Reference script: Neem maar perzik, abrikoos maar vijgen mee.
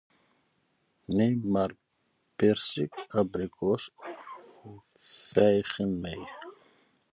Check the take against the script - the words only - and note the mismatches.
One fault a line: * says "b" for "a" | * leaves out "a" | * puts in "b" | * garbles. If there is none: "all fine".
* says "of" for "maar"